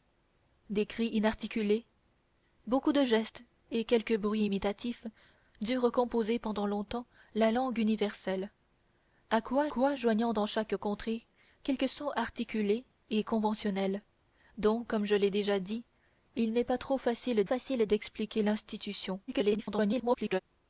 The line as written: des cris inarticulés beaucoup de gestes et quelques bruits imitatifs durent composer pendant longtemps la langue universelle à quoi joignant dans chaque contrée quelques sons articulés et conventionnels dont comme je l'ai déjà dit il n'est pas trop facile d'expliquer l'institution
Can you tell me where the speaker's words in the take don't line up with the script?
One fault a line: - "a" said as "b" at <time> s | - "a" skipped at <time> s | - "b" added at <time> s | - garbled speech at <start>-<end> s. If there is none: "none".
- "quoi" added at 9.7 s
- "facile" added at 17.4 s
- garbled speech at 19.3-20.4 s